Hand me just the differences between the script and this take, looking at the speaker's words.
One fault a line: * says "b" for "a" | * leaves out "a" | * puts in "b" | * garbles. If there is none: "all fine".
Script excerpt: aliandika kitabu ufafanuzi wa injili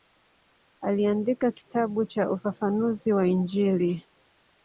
* puts in "cha"